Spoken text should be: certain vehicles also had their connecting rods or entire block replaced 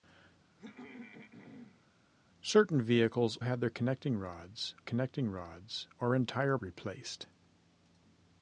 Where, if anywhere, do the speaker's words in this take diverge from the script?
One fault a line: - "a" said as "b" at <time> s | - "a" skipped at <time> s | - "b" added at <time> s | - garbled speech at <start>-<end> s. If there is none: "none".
- "also" skipped at 3.4 s
- "connecting rods" added at 4.8 s
- "block" skipped at 6.6 s